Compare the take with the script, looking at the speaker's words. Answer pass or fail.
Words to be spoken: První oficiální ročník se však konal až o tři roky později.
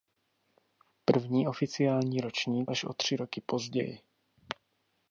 fail